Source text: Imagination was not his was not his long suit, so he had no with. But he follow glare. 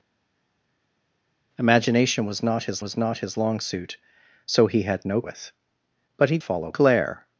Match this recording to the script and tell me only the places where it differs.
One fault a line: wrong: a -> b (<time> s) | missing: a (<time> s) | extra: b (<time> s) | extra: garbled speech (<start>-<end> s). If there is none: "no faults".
no faults